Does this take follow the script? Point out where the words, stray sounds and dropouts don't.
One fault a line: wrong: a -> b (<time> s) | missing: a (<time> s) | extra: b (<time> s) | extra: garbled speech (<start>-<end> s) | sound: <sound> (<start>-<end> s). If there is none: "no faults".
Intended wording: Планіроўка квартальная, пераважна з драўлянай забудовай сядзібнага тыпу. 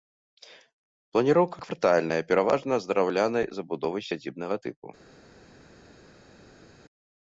no faults